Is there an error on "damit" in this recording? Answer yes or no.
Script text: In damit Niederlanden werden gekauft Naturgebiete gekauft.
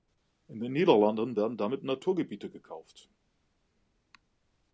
yes